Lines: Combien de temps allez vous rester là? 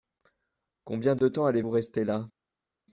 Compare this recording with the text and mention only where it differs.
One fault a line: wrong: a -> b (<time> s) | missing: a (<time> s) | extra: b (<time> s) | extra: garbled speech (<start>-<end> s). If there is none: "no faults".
no faults